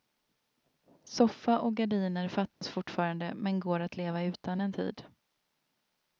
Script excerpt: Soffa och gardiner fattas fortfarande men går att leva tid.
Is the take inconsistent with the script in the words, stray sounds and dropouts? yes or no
yes